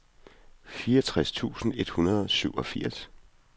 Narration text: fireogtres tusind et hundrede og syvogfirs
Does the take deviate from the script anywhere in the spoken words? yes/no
no